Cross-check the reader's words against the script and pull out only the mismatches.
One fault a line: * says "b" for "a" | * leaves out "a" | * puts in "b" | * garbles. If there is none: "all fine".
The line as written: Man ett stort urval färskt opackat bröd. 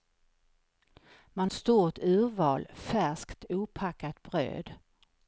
all fine